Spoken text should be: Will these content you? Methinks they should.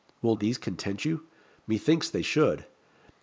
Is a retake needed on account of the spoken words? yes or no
no